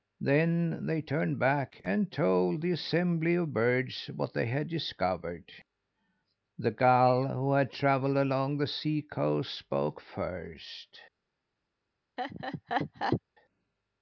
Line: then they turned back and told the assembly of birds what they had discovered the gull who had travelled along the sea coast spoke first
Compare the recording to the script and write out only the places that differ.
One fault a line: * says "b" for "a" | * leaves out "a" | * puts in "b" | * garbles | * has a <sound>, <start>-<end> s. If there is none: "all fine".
* has a laugh, 12.2-13.2 s